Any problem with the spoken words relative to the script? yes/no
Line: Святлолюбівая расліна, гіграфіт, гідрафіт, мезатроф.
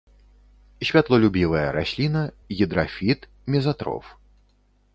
yes